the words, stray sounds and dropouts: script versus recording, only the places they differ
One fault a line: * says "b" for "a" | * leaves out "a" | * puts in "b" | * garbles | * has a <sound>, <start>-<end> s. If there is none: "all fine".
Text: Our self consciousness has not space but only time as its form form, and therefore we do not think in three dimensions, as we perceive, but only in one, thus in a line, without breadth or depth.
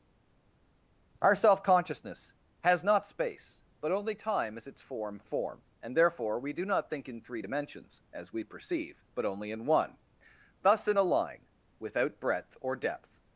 all fine